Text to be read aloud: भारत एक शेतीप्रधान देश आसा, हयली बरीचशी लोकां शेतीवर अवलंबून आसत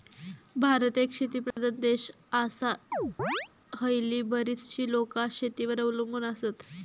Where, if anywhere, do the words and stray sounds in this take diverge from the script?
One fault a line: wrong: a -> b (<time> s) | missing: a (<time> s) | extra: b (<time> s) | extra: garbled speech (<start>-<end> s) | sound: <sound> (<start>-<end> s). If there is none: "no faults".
sound: dropout (1.5-1.6 s)
sound: chirp (2.9-3.5 s)